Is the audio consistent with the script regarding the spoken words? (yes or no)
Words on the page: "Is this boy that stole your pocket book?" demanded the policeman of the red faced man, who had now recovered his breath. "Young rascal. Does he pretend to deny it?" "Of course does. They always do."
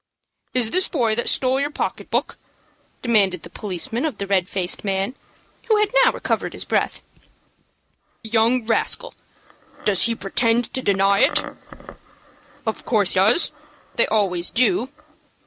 yes